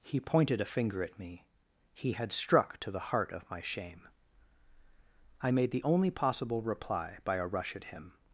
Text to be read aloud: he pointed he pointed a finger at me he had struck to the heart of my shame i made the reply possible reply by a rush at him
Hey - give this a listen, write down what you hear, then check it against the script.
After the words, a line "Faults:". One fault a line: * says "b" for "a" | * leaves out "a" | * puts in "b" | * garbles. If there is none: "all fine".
he pointed a finger at me he had struck to the heart of my shame i made the only possible reply by a rush at him
Faults:
* leaves out "he pointed"
* says "only" for "reply"